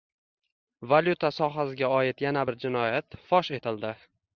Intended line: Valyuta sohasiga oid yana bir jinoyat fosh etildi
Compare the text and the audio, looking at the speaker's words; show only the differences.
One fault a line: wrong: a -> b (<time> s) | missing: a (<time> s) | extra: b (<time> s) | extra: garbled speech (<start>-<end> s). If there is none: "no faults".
no faults